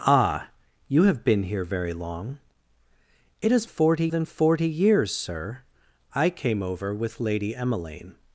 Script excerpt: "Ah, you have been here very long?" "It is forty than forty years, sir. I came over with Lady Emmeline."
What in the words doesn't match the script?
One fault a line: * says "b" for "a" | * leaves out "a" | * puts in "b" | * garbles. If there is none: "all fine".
all fine